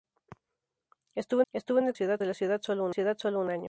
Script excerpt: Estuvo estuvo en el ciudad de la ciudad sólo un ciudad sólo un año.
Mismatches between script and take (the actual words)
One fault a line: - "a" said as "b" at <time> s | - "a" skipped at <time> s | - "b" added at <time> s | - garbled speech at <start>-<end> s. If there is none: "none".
none